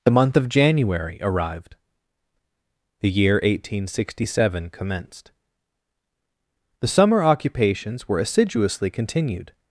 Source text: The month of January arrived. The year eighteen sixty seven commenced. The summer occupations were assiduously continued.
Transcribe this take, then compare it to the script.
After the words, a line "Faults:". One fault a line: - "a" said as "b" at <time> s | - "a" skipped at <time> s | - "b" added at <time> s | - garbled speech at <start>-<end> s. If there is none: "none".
The month of January arrived. The year eighteen sixty seven commenced. The summer occupations were assiduously continued.
Faults:
none